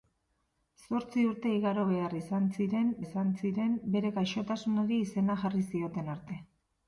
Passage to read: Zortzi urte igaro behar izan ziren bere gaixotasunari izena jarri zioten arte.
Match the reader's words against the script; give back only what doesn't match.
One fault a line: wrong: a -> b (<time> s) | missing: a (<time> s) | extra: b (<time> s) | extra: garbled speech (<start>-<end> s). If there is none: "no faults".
extra: izan ziren (3.0 s)